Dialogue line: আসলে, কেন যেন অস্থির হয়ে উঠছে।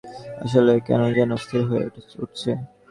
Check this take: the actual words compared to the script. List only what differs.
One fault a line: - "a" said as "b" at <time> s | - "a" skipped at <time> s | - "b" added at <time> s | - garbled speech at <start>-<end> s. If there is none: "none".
none